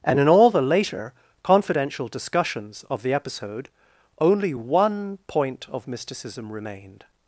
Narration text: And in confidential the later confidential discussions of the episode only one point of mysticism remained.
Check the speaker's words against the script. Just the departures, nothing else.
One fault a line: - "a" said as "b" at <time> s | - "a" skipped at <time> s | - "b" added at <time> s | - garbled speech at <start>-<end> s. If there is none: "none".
- "confidential" said as "all" at 0.3 s